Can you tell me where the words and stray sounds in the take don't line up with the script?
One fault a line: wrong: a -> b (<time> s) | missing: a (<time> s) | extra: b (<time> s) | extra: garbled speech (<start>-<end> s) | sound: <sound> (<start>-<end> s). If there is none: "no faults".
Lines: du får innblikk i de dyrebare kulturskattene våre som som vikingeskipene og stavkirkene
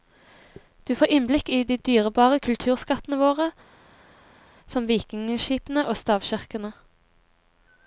missing: som (4.9 s)